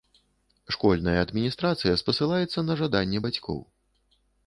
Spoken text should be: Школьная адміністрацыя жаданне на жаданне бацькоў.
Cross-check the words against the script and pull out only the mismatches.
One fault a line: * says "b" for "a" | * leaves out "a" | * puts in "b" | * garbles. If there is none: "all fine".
* says "спасылаецца" for "жаданне"